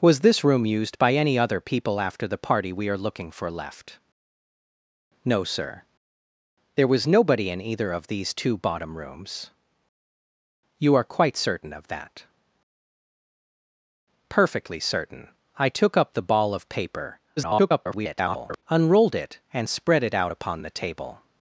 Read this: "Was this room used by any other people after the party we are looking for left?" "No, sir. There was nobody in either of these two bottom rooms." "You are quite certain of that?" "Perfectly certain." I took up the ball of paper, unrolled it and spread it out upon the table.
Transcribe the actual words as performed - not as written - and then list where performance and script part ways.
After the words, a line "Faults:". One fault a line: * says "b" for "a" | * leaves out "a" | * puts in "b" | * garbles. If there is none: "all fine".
"Was this room used by any other people after the party we are looking for left?" "No, sir. There was nobody in either of these two bottom rooms." "You are quite certain of that?" "Perfectly certain." I took up the ball of paper, [garbled] unrolled it and spread it out upon the table.
Faults:
* garbles